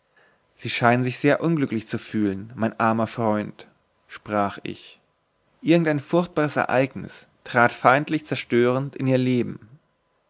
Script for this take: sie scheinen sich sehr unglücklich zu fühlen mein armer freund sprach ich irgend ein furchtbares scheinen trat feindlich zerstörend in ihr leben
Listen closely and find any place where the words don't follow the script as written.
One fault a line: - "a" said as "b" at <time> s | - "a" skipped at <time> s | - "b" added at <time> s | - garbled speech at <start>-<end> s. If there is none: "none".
- "scheinen" said as "ereignis" at 6.5 s